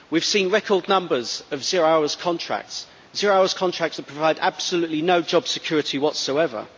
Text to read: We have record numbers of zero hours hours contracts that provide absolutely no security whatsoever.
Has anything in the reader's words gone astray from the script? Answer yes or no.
yes